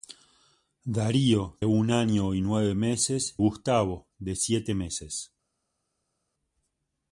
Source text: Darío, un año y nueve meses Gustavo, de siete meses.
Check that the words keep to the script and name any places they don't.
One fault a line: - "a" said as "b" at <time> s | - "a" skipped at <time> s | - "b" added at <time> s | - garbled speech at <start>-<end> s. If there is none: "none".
none